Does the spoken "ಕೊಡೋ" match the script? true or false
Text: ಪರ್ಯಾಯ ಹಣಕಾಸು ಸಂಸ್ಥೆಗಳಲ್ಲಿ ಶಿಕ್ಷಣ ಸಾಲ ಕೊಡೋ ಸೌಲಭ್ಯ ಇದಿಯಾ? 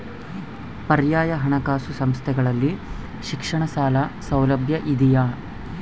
false